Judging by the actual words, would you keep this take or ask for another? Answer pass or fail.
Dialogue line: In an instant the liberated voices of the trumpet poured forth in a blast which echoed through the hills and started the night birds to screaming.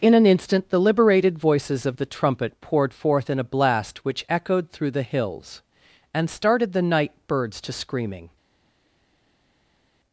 pass